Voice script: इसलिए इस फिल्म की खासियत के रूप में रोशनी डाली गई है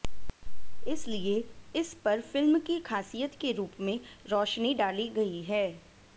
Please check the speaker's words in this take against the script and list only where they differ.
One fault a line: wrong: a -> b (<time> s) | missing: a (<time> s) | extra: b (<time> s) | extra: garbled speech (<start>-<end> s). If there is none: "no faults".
extra: पर (2.0 s)